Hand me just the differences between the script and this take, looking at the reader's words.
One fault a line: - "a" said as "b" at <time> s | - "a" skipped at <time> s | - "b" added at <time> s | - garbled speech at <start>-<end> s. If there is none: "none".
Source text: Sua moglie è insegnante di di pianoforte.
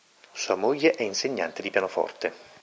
- "di" skipped at 1.7 s